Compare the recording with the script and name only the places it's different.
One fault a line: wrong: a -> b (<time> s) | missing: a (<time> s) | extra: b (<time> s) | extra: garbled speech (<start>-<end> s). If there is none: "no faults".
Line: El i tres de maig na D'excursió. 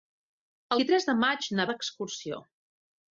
no faults